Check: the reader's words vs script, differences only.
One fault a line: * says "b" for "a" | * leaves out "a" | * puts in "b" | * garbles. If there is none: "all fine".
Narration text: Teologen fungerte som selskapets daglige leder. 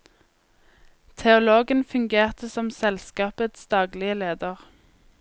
all fine